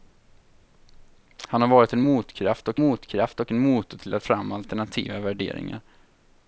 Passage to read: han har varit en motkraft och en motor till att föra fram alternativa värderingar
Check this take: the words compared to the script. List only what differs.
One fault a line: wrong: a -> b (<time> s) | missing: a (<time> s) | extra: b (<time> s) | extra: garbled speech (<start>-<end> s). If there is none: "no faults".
extra: motkraft och (2.7 s)
missing: föra (4.2 s)